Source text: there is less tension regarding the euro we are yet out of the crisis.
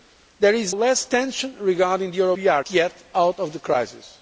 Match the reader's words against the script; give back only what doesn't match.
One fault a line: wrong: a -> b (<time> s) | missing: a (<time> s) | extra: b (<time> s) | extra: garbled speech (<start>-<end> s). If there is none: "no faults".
no faults